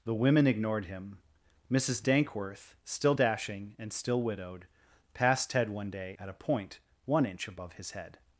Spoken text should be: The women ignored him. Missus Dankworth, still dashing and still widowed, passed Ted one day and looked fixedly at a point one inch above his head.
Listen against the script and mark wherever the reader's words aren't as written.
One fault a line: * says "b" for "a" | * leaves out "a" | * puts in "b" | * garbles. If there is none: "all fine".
* leaves out "and looked fixedly"